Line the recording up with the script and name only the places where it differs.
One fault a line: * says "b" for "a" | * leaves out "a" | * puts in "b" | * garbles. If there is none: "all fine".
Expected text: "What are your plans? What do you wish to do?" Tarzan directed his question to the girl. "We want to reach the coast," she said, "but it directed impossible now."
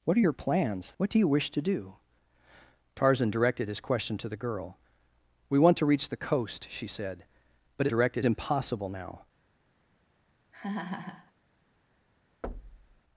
all fine